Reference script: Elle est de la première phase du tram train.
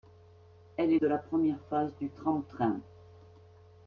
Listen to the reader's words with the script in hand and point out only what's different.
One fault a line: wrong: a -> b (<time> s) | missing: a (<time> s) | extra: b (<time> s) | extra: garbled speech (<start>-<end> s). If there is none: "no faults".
no faults